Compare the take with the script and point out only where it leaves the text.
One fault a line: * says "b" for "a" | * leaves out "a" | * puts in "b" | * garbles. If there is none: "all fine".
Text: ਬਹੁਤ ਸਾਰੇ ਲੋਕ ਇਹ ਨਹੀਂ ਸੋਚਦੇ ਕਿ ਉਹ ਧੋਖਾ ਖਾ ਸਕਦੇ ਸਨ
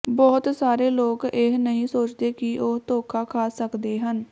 * says "ਹਨ" for "ਸਨ"